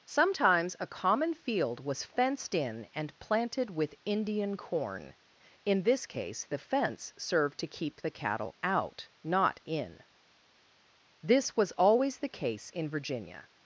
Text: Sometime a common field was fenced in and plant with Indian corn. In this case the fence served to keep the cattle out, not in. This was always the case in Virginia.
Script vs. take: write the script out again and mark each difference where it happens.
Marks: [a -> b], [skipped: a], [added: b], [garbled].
[Sometime -> Sometimes] a common field was fenced in and [plant -> planted] with Indian corn. In this case the fence served to keep the cattle out, not in. This was always the case in Virginia.